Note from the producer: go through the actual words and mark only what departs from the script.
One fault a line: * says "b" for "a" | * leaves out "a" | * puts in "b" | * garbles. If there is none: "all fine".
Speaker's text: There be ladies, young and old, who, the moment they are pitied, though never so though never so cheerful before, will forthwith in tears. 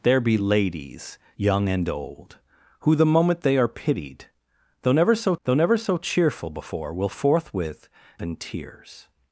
all fine